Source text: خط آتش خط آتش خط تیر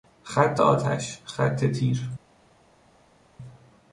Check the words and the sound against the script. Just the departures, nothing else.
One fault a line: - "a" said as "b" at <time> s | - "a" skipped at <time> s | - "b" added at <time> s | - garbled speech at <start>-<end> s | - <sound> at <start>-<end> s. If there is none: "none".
- "آتش خط" skipped at 1.6 s